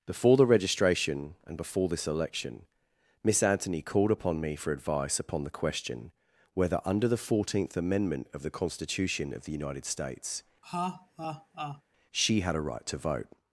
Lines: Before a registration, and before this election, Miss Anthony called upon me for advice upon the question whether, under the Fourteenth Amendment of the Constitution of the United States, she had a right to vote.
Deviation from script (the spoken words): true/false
true